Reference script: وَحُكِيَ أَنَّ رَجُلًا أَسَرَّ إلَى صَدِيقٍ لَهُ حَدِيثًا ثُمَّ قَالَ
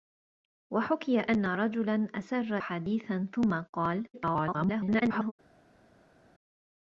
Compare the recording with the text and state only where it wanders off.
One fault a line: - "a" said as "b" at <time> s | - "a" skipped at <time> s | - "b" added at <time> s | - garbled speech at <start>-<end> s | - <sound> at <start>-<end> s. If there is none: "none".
- "إلَى صَدِيقٍ لَهُ" skipped at 2.6 s
- garbled speech at 4.1-5.3 s